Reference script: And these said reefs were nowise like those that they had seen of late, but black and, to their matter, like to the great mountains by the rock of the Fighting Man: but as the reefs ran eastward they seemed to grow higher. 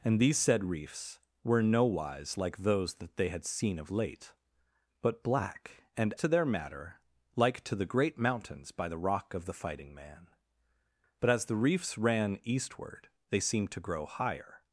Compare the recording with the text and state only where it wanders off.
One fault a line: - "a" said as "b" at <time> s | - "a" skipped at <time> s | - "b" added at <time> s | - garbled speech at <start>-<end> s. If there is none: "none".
none